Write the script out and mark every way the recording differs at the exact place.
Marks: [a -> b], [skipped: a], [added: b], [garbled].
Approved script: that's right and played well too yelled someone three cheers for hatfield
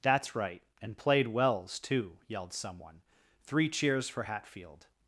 that's right and played [well -> wells] too yelled someone three cheers for hatfield